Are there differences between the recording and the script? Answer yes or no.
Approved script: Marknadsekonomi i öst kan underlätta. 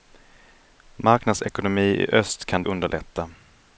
no